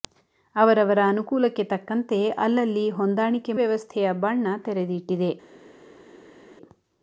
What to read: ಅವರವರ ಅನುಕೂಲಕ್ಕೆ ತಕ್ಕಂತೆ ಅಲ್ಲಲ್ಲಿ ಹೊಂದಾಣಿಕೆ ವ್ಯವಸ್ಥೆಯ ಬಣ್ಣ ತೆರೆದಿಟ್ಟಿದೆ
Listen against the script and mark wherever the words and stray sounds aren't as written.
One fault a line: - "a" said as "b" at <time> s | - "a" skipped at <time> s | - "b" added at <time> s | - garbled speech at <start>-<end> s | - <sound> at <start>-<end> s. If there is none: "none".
none